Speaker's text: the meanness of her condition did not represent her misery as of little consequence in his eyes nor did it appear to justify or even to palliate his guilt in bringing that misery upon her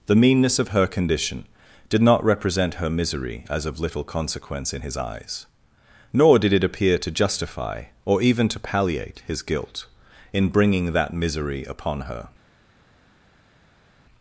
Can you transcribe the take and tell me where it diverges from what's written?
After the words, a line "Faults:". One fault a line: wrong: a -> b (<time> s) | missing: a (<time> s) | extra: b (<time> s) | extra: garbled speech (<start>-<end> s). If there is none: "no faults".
the meanness of her condition did not represent her misery as of little consequence in his eyes nor did it appear to justify or even to palliate his guilt in bringing that misery upon her
Faults:
no faults